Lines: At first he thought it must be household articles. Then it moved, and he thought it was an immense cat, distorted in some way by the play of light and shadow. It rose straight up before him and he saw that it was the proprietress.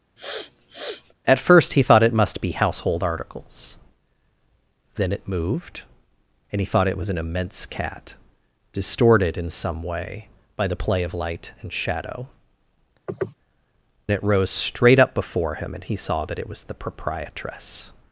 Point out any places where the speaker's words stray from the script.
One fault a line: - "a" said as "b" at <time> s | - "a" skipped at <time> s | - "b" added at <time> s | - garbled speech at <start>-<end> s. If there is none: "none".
none